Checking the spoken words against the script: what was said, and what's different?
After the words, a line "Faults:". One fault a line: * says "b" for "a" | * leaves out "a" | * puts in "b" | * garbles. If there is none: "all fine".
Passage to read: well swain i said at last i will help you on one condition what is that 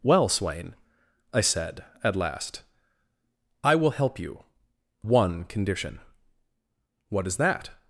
well swain i said at last i will help you one condition what is that
Faults:
* leaves out "on"